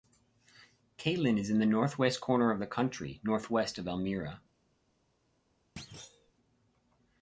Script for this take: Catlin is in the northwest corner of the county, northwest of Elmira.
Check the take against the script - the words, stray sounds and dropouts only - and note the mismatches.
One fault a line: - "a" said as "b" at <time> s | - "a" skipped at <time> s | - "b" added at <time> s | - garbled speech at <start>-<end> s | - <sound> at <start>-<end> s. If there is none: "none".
- thud at 5.8-6.3 s